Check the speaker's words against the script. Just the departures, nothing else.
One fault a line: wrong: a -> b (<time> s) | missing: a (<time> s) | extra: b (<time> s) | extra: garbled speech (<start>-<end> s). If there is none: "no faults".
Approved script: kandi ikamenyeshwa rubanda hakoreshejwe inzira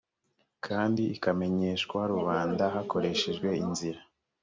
no faults